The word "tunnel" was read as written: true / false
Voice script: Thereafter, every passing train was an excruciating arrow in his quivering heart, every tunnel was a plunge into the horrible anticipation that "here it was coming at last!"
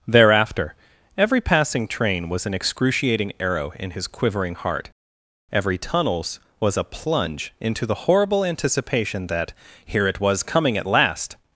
false